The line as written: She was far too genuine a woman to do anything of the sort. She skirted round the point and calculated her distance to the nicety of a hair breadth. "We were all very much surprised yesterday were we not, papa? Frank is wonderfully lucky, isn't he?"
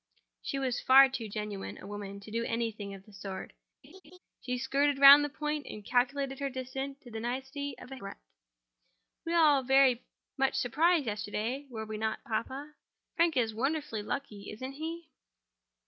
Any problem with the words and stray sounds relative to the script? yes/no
yes